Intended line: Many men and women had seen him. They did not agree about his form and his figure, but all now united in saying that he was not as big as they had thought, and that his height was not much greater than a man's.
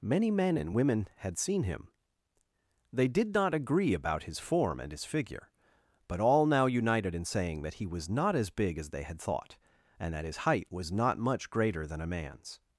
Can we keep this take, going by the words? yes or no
yes